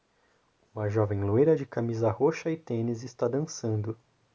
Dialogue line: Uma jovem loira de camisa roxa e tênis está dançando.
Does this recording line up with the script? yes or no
yes